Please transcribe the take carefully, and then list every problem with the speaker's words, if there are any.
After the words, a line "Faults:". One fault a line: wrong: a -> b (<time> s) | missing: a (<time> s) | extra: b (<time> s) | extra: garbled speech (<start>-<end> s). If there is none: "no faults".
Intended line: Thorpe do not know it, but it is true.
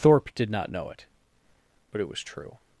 Thorpe did not know it, but it was true.
Faults:
wrong: do -> did (0.3 s)
wrong: is -> was (2.1 s)